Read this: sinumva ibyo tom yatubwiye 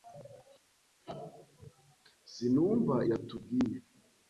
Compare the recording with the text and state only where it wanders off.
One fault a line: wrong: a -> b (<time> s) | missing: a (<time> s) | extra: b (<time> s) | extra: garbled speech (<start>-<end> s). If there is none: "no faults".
missing: ibyo tom (3.0 s)